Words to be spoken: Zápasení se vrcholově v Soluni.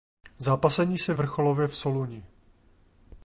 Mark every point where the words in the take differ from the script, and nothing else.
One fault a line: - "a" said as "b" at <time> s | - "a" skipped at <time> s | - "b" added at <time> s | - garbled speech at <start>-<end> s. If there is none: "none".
none